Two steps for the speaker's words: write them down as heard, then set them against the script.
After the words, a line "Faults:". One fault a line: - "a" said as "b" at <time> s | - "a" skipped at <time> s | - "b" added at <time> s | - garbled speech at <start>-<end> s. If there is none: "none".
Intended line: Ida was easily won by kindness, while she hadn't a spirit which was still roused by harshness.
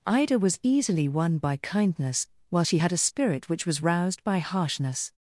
Ida was easily won by kindness, while she had a spirit which was roused by harshness.
Faults:
- "hadn't" said as "had" at 2.8 s
- "still" skipped at 3.8 s